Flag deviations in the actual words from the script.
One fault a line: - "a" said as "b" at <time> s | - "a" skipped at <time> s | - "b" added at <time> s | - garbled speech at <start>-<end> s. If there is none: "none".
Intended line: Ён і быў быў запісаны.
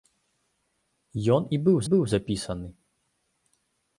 none